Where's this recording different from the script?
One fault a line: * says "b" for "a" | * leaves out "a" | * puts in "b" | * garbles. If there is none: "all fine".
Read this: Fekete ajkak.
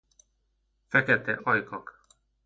all fine